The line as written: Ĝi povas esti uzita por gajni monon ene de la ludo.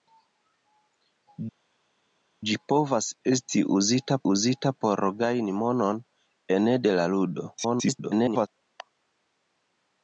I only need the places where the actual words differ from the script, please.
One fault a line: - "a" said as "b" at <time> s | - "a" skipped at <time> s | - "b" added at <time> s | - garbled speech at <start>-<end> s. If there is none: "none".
- "uzita" added at 4.3 s
- garbled speech at 7.5-8.5 s